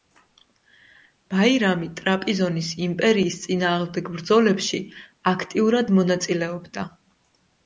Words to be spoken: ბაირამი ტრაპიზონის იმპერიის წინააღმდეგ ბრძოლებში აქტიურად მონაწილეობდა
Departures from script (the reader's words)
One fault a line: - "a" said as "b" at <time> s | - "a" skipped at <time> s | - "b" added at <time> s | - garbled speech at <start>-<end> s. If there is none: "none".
none